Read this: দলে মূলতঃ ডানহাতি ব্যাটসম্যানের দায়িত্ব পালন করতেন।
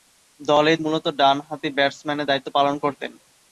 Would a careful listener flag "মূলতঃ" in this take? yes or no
no